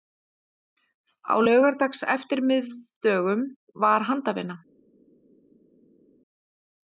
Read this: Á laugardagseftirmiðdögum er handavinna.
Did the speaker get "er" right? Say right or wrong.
wrong